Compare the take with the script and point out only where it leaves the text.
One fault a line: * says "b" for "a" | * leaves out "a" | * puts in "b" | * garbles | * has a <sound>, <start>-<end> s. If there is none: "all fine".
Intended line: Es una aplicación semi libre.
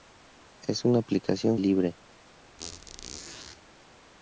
* leaves out "semi"
* has a squeak, 2.6-3.6 s